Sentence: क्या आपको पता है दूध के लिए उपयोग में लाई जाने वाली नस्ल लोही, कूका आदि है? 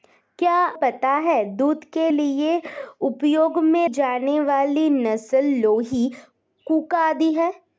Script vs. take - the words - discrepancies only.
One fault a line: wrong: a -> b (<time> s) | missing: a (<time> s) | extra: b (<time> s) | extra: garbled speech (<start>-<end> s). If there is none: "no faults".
missing: आपको (0.5 s)
missing: लाई (3.9 s)